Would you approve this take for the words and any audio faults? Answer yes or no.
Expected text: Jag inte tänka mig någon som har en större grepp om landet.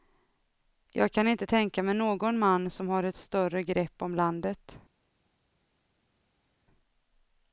no